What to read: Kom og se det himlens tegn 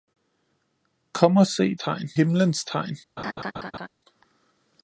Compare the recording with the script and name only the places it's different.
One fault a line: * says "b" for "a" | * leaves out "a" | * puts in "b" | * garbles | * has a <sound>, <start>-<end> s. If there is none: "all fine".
* says "tegn" for "det"
* has a laugh, 3.2-3.9 s